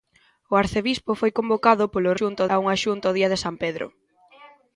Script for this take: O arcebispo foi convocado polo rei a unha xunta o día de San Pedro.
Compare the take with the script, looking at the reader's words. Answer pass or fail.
fail